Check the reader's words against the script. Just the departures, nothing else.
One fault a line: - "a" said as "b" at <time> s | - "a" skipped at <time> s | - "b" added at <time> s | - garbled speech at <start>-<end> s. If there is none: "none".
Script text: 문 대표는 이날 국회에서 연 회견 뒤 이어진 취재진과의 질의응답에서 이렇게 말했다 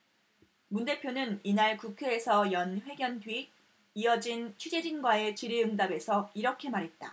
none